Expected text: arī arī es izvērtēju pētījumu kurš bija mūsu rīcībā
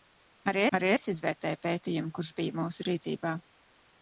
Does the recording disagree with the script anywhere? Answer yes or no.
no